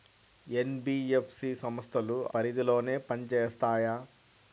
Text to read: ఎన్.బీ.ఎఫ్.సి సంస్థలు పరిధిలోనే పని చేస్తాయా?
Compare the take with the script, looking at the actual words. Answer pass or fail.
pass